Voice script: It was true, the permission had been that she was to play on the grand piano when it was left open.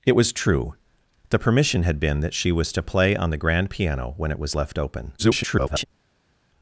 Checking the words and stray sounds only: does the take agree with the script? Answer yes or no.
no